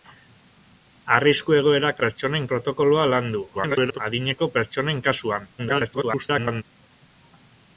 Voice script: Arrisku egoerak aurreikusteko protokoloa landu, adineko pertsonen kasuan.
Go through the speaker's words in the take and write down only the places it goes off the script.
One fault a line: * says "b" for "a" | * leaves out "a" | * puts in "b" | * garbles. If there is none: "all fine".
* says "pertsonen" for "aurreikusteko"
* garbles
* garbles